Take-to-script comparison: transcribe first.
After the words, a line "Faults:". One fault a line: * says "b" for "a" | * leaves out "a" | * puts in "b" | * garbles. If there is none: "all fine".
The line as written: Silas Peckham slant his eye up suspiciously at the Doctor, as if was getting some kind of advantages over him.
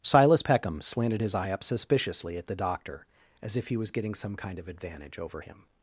Silas Peckham slanted his eye up suspiciously at the Doctor, as if he was getting some kind of advantage over him.
Faults:
* says "slanted" for "slant"
* puts in "he"
* says "advantage" for "advantages"